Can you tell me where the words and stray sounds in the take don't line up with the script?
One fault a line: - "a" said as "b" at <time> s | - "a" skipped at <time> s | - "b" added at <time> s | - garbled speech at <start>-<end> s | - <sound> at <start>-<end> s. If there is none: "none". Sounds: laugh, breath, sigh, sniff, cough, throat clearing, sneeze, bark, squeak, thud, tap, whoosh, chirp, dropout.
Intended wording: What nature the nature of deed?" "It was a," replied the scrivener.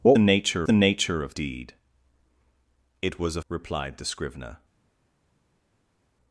none